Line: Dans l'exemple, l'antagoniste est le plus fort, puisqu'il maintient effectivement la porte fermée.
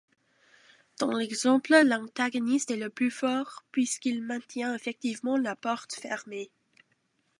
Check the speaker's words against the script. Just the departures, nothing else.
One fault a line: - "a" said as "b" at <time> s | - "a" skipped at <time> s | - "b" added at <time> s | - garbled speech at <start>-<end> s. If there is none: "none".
none